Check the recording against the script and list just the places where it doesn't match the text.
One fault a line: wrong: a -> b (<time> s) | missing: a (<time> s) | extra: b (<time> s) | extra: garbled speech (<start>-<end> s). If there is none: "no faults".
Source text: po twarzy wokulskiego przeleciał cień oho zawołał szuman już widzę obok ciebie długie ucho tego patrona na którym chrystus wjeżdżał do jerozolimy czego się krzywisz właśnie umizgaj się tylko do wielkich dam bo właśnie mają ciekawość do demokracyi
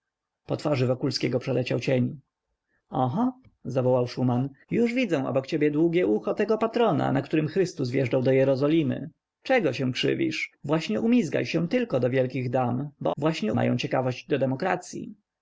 no faults